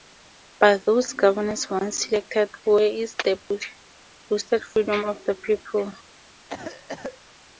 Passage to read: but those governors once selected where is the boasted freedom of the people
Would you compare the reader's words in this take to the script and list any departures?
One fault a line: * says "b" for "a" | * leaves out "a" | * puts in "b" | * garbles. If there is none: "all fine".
all fine